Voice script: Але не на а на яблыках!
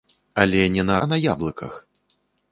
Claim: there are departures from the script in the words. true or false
false